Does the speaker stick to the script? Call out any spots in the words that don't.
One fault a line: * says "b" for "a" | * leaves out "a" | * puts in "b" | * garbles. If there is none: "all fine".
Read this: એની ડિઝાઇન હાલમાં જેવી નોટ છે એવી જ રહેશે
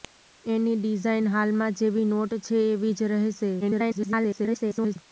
* garbles